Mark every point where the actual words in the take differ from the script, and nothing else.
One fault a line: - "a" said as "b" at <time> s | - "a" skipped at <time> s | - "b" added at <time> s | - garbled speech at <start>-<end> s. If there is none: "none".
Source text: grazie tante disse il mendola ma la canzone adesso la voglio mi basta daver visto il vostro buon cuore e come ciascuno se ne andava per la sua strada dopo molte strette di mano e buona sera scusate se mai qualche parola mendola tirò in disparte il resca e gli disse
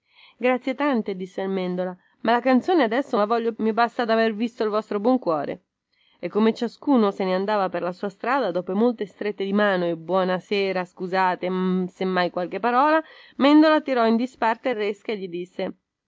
none